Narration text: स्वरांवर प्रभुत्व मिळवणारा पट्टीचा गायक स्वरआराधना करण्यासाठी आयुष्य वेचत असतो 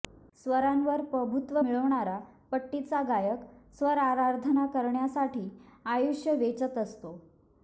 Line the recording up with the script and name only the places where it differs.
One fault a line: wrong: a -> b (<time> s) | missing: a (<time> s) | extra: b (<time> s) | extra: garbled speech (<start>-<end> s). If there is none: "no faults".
no faults